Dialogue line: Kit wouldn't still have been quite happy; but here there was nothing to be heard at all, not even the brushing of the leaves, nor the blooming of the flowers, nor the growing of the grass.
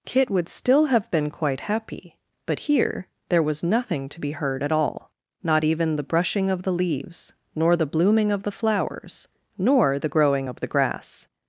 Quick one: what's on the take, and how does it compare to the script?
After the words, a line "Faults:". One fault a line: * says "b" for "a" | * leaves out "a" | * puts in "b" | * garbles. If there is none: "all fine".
Kit would still have been quite happy; but here there was nothing to be heard at all, not even the brushing of the leaves, nor the blooming of the flowers, nor the growing of the grass.
Faults:
* says "would" for "wouldn't"